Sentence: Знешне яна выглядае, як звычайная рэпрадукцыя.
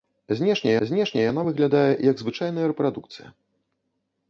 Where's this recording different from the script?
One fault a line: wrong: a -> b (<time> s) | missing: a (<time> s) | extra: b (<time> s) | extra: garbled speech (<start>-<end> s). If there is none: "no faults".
extra: знешне (0.9 s)